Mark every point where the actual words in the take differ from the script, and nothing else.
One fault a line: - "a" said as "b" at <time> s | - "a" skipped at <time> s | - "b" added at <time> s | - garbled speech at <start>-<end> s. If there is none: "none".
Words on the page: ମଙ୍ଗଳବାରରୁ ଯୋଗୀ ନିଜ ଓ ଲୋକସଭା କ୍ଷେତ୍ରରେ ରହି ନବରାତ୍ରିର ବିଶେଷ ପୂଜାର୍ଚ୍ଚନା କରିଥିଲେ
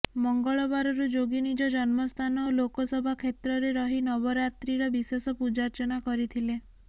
- "ଜନ୍ମସ୍ଥାନ" added at 1.7 s